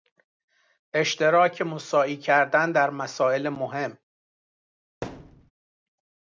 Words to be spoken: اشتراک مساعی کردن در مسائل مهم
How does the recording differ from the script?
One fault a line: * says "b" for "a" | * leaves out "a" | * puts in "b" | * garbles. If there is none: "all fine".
all fine